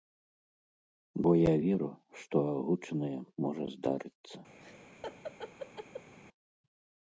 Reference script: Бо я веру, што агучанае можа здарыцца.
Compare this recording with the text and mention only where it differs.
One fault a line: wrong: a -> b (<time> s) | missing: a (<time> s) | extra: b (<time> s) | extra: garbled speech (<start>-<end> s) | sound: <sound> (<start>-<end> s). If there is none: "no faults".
sound: laugh (4.6-6.1 s)